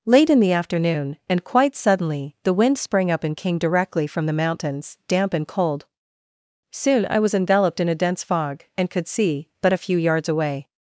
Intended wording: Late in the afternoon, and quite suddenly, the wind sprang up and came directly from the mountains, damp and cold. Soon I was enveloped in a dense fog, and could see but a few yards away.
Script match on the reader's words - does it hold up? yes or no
yes